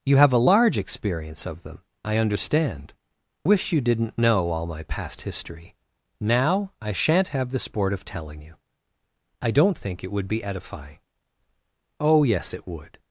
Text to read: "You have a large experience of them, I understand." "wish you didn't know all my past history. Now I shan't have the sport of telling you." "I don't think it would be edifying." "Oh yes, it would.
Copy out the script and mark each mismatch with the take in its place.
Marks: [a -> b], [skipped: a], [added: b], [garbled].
"You have a large experience of them, I understand." "wish you didn't know all my past history. Now I shan't have the sport of telling you." "I don't think it would be edifying." "Oh yes, it would.